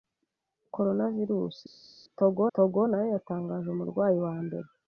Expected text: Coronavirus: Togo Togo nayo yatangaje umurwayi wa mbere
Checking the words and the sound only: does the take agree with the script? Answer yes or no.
yes